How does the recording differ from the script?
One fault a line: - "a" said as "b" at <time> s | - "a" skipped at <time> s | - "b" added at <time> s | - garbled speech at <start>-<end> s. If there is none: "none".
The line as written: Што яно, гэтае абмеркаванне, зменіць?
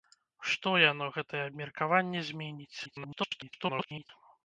- garbled speech at 2.8-4.1 s